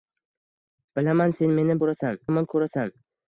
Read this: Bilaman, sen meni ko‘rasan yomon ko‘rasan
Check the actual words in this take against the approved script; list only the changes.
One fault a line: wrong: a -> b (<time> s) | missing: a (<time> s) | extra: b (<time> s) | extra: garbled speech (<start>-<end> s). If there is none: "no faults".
no faults